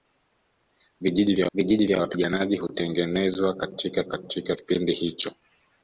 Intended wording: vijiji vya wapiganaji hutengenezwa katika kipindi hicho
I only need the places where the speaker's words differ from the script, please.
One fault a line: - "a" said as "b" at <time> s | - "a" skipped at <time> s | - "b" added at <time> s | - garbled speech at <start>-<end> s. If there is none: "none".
- "vijiji vya" added at 1.5 s
- "katika" added at 4.1 s